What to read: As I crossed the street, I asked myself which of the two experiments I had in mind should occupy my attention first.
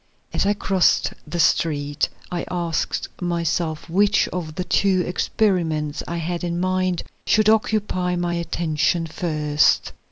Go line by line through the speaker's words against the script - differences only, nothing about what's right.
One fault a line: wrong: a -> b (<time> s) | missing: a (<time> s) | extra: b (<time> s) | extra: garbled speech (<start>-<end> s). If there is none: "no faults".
no faults